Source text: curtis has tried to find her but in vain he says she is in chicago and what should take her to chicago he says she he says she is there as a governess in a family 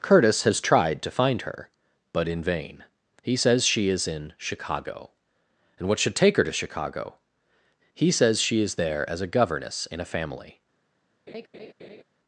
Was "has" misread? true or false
false